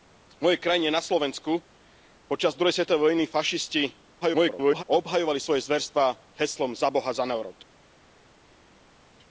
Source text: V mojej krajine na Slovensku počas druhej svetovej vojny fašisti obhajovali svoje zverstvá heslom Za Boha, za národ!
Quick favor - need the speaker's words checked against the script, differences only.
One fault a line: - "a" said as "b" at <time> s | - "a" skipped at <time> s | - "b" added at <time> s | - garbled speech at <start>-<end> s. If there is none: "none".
- garbled speech at 4.2-4.8 s